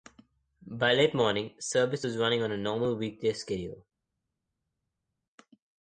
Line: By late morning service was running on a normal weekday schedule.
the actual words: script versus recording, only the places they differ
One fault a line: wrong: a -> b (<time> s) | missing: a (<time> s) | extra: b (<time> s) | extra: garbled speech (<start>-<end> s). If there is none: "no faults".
no faults